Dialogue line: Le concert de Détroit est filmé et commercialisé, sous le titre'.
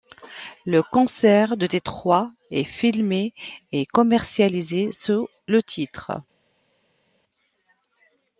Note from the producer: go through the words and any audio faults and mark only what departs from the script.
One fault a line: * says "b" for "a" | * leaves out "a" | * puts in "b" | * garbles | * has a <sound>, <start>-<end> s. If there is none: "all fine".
all fine